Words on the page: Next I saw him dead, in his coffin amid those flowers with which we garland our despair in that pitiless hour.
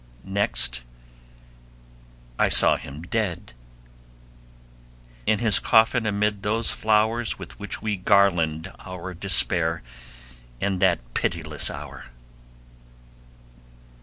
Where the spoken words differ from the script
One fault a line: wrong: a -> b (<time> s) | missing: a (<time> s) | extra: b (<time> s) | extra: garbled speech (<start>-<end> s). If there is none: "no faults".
no faults